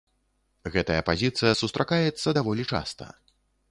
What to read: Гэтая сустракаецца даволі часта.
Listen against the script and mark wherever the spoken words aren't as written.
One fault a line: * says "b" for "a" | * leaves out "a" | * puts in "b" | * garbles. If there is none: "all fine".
* puts in "пазіцыя"